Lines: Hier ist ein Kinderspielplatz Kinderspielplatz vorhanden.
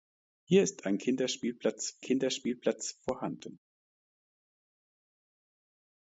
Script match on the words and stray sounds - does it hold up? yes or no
yes